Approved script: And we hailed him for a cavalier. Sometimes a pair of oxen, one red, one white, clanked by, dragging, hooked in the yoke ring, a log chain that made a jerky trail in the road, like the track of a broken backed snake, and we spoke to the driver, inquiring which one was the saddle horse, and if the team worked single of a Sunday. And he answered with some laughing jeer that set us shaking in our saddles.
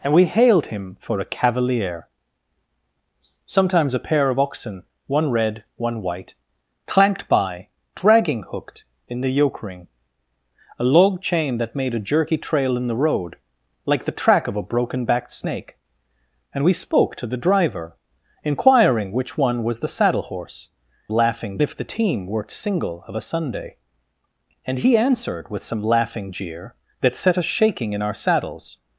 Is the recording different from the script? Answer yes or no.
yes